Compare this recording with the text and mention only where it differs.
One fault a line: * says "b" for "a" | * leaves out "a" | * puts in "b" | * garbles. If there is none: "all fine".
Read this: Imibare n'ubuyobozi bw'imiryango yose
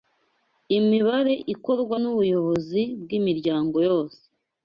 * puts in "ikorwa"